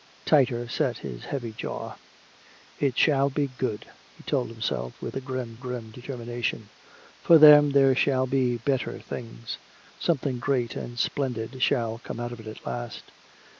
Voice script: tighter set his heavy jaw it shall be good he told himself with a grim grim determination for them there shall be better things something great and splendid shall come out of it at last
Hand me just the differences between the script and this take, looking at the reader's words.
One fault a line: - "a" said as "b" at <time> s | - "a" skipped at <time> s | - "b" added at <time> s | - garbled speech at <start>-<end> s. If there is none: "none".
none